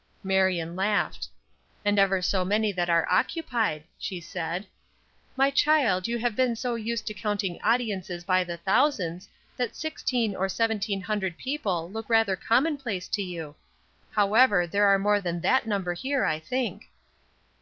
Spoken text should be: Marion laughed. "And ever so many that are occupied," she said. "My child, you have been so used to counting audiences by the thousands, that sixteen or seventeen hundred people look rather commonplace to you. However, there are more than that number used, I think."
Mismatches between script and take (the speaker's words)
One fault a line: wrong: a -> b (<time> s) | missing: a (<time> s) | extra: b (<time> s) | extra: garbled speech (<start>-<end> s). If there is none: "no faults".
wrong: used -> here (15.9 s)